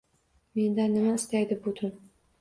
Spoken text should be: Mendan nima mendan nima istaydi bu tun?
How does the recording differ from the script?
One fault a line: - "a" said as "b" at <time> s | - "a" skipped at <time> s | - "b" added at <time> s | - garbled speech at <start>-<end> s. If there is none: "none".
- "mendan nima" skipped at 1.1 s